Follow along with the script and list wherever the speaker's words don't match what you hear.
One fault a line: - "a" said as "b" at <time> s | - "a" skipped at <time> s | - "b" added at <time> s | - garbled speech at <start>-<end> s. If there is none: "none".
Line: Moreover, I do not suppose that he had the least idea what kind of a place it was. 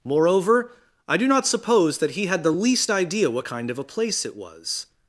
none